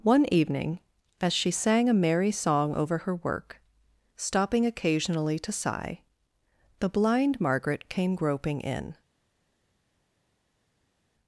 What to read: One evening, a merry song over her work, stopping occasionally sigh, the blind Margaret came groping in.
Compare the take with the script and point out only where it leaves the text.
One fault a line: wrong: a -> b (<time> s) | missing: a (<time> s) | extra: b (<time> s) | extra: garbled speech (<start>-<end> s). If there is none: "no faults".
extra: as she sang (1.2 s)
extra: to (5.4 s)